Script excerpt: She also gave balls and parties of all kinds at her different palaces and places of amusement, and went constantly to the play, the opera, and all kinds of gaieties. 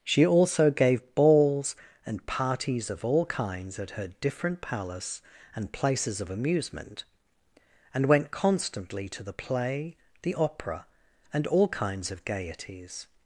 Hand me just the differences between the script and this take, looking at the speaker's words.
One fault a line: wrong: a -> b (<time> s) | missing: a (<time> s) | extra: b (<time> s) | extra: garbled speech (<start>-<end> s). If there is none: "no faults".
wrong: palaces -> palace (4.6 s)